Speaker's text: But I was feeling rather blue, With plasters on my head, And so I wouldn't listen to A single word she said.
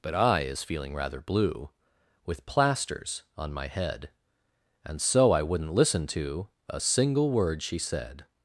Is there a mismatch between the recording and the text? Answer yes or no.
yes